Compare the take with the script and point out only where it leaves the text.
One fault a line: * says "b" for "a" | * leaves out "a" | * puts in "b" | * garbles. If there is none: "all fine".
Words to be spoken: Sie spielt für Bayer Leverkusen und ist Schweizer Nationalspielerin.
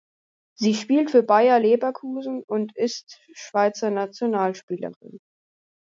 all fine